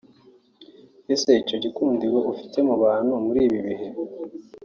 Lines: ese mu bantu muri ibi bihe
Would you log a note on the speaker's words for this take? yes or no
yes